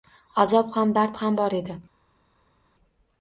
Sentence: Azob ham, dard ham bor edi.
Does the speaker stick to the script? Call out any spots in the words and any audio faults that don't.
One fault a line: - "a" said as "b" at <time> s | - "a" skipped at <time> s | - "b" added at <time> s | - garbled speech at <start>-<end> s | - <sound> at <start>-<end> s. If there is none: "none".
none